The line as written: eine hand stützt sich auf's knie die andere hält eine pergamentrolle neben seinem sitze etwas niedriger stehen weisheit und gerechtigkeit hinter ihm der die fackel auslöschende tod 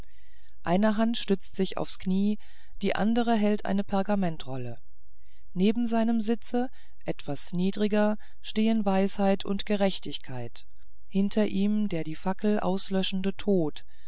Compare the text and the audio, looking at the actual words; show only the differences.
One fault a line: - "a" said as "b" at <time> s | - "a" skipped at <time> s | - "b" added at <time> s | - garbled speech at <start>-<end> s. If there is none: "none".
none